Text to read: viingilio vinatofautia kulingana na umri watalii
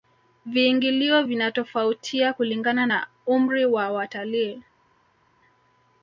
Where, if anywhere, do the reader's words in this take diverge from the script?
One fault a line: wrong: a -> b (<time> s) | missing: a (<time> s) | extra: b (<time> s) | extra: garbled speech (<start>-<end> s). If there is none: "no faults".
extra: wa (3.6 s)